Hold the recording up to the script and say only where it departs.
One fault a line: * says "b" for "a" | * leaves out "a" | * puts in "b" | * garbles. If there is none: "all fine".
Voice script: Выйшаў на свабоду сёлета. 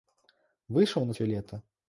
* leaves out "свабоду"